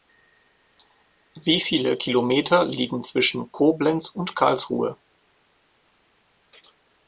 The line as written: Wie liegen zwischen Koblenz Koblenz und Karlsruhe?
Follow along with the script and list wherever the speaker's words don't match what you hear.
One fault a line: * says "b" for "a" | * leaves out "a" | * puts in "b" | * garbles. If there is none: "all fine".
* puts in "viele Kilometer"
* leaves out "Koblenz"